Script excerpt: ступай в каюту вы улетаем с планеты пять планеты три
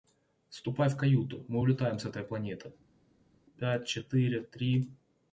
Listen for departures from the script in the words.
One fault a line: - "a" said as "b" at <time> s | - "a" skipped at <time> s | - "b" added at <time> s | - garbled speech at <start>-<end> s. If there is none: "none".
- "вы" said as "мы" at 1.5 s
- "этой" added at 2.0 s
- "планеты" said as "четыре" at 3.9 s